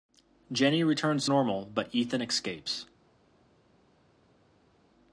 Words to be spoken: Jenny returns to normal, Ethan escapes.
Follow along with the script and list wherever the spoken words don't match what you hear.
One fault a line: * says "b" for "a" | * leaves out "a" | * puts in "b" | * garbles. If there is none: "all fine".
* puts in "but"